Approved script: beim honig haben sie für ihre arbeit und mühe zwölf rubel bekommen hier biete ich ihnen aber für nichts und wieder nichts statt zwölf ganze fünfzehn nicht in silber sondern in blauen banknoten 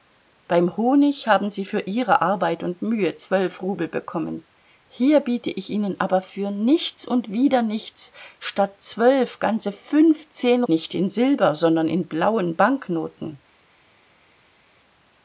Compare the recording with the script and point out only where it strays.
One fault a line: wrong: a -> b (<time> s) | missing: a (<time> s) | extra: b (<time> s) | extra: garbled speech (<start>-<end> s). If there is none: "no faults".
no faults